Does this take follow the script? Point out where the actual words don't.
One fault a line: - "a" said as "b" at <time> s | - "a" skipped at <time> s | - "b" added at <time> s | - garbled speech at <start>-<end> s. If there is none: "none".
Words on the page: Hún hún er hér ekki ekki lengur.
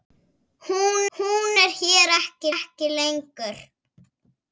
none